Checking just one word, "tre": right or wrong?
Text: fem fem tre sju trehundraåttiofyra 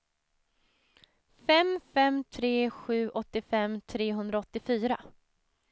right